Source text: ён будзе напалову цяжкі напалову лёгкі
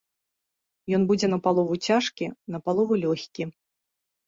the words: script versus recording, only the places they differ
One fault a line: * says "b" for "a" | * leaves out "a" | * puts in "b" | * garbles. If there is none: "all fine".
all fine